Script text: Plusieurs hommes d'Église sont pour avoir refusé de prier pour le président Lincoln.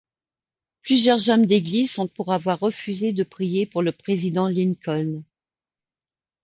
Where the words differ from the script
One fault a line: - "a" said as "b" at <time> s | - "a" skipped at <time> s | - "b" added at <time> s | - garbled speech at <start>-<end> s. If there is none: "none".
none